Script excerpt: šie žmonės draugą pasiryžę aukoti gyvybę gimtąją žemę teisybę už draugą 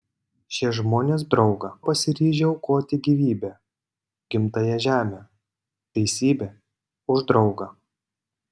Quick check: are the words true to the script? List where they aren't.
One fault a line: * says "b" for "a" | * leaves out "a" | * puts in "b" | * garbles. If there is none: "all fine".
all fine